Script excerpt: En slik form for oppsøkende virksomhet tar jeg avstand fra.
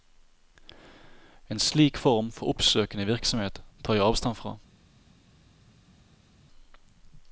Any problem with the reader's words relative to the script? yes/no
no